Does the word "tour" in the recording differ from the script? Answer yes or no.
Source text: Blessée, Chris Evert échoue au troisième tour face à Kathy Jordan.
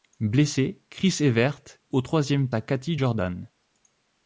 yes